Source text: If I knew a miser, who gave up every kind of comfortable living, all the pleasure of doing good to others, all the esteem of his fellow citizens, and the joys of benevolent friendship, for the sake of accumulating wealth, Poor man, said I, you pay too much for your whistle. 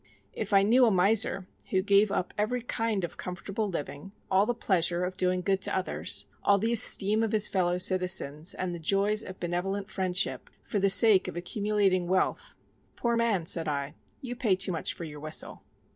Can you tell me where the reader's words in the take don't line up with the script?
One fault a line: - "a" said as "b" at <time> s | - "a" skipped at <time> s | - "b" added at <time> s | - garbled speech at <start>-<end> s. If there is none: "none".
none